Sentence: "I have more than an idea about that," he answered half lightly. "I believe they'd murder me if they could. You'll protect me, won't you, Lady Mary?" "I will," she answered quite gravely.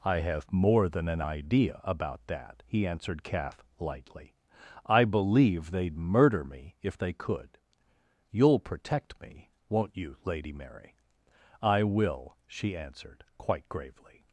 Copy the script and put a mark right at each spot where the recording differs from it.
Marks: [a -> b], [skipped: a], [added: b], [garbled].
"I have more than an idea about that," he answered [half -> calf] lightly. "I believe they'd murder me if they could. You'll protect me, won't you, Lady Mary?" "I will," she answered quite gravely.